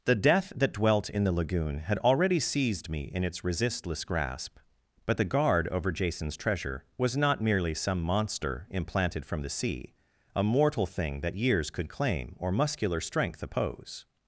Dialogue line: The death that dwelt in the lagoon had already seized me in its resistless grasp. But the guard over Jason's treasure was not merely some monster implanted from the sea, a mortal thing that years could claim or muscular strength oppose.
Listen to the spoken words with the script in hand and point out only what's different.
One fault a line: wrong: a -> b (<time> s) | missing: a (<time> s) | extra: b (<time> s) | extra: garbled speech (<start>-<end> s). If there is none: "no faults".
no faults